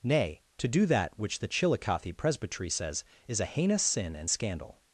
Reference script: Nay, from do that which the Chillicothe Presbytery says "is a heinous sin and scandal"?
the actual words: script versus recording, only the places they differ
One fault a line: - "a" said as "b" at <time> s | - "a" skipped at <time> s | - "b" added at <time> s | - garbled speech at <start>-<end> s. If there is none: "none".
- "from" said as "to" at 0.6 s